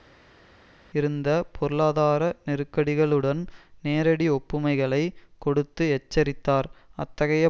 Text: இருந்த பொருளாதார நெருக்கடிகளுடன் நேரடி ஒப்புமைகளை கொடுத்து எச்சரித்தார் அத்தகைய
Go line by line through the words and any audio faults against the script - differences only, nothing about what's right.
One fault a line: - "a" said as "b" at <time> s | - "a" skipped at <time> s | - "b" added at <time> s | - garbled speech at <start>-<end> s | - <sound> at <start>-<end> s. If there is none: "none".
none